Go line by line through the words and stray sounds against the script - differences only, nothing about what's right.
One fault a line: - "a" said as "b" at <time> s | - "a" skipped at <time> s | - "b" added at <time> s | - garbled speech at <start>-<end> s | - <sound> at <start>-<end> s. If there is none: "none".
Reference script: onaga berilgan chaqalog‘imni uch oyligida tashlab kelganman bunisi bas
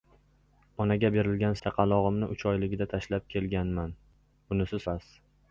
none